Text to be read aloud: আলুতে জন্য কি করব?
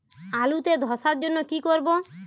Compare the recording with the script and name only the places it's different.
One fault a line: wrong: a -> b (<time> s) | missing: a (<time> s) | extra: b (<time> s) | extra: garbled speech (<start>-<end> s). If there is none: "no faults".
extra: ধসার (0.8 s)